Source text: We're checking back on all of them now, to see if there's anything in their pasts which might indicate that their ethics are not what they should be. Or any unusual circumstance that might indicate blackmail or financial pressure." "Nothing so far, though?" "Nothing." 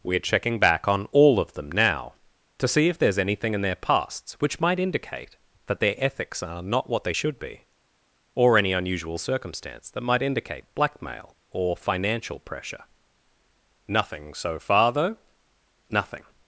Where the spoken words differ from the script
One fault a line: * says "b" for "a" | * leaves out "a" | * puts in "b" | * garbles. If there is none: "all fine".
all fine